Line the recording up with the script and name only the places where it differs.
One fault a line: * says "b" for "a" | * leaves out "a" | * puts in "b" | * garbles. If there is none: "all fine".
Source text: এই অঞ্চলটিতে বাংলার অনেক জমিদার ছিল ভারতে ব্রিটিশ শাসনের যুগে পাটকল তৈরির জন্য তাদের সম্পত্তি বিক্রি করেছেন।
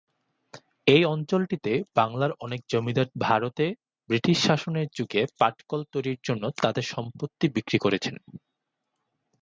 * leaves out "ছিল"